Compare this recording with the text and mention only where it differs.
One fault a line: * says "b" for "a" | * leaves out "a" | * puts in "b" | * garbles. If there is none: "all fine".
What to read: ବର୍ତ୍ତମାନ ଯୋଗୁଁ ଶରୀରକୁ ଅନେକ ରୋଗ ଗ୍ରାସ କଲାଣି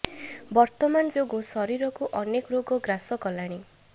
all fine